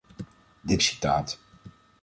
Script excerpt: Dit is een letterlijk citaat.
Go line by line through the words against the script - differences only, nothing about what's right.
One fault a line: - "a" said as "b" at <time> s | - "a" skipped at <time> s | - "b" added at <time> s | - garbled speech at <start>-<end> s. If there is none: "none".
- "is een letterlijk" skipped at 0.8 s